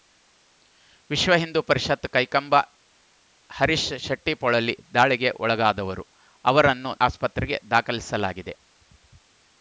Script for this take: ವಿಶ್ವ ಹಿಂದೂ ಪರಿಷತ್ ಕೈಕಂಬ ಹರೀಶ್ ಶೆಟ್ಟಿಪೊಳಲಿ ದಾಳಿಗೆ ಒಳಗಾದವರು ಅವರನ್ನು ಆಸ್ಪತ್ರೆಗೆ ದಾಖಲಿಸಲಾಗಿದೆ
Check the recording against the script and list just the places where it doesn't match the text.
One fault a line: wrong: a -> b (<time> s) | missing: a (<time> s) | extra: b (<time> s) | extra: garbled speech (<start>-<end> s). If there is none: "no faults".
no faults